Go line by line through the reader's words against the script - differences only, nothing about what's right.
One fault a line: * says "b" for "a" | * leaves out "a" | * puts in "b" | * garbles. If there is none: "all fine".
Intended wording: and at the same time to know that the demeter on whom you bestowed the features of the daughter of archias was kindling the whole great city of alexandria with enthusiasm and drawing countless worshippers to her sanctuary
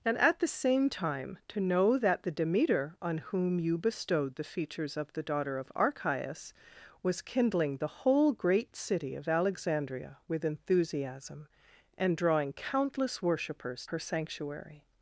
* leaves out "to"